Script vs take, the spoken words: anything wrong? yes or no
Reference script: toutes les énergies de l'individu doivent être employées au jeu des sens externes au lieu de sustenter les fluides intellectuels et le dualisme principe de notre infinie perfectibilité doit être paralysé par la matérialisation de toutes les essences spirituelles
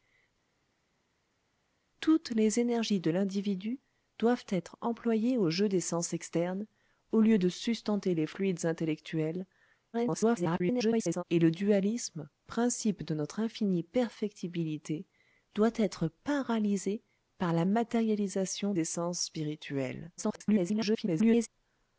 yes